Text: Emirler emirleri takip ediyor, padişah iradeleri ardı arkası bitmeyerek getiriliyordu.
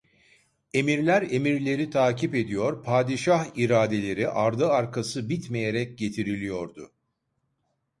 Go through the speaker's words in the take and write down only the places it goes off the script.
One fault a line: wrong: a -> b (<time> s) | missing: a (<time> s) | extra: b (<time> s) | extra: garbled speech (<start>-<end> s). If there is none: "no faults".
no faults